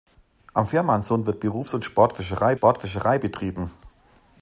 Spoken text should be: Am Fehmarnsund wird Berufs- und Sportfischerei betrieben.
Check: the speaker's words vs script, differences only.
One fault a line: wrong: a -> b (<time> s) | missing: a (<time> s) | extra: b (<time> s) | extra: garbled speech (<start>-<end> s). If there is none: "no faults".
extra: Sportfischerei (2.5 s)